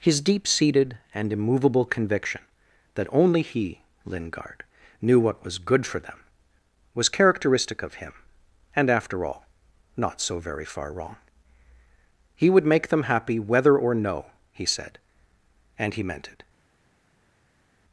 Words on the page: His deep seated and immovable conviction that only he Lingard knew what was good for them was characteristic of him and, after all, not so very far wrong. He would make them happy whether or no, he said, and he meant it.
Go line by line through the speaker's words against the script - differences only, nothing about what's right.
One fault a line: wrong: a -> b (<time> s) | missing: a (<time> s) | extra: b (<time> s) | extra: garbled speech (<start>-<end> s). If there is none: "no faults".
no faults